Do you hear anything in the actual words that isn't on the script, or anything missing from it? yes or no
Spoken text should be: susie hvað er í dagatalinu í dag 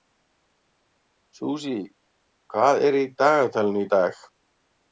no